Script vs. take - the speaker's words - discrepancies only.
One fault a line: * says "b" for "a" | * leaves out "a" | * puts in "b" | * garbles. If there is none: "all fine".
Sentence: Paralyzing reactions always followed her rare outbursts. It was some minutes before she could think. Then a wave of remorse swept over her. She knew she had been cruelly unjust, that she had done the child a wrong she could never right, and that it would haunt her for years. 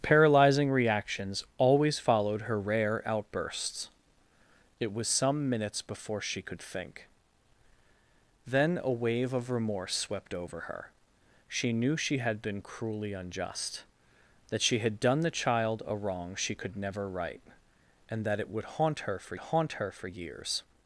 * puts in "haunt her for"